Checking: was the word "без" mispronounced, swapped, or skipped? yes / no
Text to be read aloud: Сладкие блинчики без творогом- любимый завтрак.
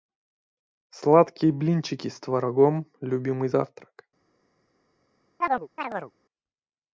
yes